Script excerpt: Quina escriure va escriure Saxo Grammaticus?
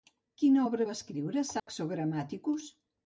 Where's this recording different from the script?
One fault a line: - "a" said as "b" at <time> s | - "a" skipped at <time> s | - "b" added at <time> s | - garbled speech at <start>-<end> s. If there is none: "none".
- "escriure" said as "obra" at 0.6 s